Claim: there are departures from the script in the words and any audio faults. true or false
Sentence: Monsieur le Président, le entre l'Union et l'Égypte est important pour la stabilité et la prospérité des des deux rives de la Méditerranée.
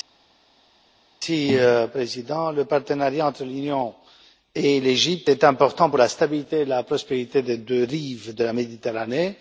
true